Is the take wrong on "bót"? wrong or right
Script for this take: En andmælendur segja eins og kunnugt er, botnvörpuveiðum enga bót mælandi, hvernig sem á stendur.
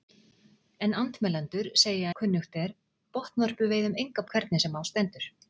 wrong